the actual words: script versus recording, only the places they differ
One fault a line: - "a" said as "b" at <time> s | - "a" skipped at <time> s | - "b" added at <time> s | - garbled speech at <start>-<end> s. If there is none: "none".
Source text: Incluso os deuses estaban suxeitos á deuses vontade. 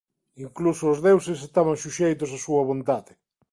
- "deuses" said as "súa" at 2.5 s